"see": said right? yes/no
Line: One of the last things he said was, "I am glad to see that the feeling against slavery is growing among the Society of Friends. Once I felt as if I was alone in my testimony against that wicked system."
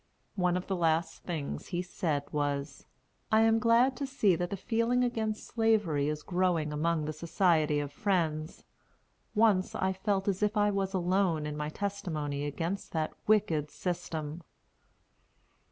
yes